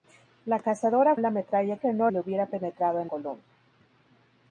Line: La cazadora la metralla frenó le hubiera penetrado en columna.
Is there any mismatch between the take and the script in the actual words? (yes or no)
no